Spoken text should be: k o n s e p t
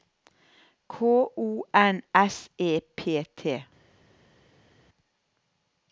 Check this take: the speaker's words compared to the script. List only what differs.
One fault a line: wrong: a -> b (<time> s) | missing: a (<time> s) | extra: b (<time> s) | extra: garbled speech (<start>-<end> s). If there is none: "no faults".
no faults